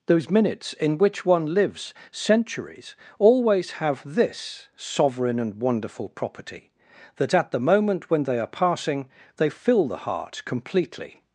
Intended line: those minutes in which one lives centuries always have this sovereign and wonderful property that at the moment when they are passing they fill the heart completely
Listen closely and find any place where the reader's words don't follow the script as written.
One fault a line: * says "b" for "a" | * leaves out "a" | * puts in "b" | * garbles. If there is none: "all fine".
all fine